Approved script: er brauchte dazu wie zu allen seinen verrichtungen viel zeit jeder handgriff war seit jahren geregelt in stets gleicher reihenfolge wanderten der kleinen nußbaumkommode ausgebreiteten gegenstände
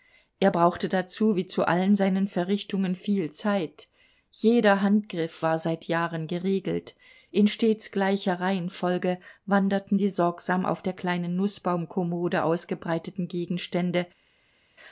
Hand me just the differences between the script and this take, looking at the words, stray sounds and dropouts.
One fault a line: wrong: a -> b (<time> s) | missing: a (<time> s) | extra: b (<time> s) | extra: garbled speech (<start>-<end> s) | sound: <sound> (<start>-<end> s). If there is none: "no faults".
extra: die sorgsam auf (10.0 s)